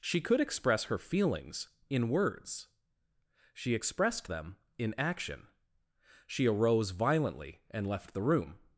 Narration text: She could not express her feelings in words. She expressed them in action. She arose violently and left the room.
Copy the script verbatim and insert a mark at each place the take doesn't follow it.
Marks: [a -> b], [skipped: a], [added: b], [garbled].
She could [skipped: not] express her feelings in words. She expressed them in action. She arose violently and left the room.